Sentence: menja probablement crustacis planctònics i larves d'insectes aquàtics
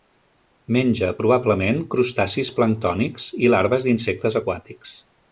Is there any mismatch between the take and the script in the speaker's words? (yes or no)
no